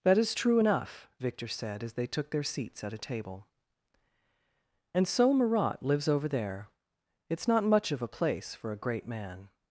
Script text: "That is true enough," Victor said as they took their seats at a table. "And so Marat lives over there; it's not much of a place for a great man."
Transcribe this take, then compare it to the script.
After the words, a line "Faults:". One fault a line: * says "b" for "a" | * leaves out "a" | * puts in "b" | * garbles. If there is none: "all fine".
"That is true enough," Victor said as they took their seats at a table. "And so Marat lives over there; it's not much of a place for a great man."
Faults:
all fine